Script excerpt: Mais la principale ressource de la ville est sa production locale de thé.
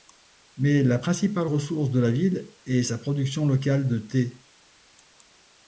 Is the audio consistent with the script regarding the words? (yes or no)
yes